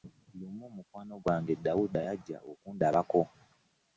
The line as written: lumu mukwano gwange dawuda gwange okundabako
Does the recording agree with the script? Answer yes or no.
no